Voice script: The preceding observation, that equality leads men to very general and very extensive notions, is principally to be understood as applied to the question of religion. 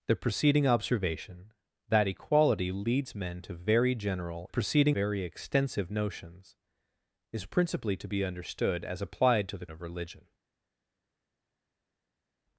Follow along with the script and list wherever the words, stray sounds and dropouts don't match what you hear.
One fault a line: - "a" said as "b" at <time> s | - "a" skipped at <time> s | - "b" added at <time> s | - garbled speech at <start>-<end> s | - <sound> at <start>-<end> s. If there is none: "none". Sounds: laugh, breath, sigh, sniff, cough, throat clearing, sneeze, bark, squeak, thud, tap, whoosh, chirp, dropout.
- "and" said as "preceding" at 4.5 s
- "question" skipped at 9.7 s